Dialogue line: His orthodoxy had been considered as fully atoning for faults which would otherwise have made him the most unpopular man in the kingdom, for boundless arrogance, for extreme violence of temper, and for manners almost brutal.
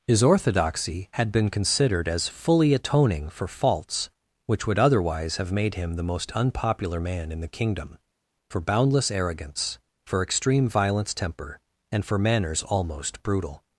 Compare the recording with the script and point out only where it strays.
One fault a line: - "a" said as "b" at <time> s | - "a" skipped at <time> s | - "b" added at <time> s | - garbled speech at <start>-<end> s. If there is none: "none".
- "of" skipped at 11.1 s